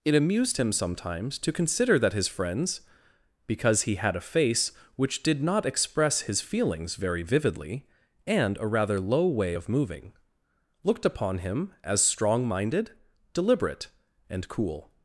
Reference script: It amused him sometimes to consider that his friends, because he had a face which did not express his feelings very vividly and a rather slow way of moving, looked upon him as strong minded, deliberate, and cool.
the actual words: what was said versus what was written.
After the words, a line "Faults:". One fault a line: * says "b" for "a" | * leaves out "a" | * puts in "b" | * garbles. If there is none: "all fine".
It amused him sometimes to consider that his friends, because he had a face which did not express his feelings very vividly and a rather low way of moving, looked upon him as strong minded, deliberate, and cool.
Faults:
* says "low" for "slow"